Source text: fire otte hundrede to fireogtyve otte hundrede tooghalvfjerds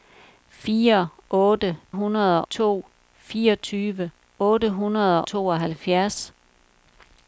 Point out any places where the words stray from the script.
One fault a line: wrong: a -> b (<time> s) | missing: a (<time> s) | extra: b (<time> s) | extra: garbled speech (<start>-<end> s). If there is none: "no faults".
no faults